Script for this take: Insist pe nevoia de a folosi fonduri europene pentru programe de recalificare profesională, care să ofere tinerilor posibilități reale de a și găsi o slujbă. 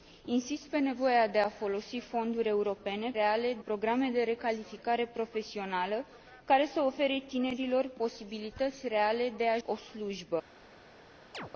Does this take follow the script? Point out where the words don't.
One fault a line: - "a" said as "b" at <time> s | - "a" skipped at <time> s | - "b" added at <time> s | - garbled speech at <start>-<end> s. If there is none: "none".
- "pentru" said as "reale" at 3.1 s
- "și găsi" skipped at 9.6 s